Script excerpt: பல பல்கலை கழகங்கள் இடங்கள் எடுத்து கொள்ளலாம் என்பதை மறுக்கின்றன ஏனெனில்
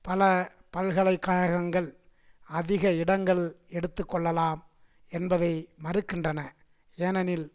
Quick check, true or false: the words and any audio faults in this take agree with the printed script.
false